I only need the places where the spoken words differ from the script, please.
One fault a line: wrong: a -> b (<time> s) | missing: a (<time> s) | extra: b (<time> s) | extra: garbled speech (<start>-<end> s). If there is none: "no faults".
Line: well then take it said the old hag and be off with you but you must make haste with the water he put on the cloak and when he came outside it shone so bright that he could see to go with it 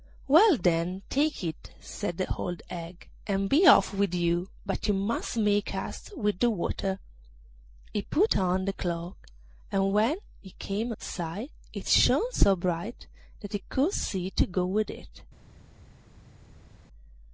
no faults